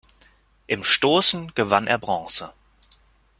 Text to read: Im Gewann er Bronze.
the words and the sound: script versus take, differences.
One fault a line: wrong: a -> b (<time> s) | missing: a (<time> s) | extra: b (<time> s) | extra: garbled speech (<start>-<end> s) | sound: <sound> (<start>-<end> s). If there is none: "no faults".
extra: Stoßen (0.8 s)